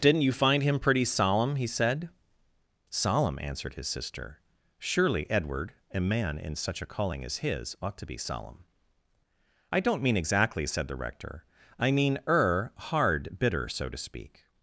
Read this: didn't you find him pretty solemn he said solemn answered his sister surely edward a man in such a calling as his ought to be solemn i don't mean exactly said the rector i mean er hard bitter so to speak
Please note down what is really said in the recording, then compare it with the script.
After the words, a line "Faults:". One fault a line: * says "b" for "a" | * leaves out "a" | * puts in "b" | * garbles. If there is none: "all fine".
didn't you find him pretty solemn he said solemn answered his sister surely edward a man in such a calling as his ought to be solemn i don't mean exactly said the rector i mean er hard bitter so to speak
Faults:
all fine